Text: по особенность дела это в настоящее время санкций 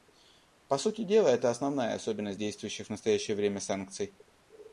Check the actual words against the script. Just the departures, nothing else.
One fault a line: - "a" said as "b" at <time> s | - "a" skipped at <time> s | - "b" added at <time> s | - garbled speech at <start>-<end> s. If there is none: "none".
- "особенность" said as "сути" at 0.8 s
- "основная особенность действующих" added at 1.5 s